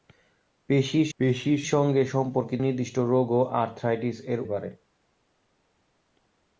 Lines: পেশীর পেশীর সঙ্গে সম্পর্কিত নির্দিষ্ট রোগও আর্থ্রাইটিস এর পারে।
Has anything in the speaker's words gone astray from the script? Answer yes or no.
no